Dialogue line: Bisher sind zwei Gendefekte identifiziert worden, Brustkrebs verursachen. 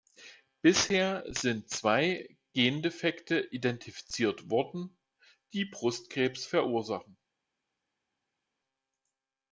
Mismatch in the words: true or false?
true